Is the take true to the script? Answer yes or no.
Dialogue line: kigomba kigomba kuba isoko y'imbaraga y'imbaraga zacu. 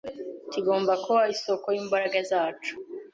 no